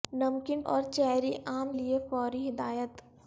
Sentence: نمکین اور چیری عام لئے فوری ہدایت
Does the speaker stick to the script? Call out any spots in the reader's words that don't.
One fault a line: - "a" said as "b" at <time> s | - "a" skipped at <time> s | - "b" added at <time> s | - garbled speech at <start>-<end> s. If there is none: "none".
none